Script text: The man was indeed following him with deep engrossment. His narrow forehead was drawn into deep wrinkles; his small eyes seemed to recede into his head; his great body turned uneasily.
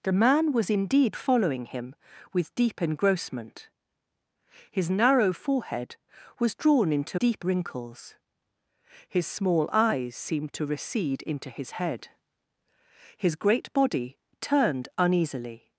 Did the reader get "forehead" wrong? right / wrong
right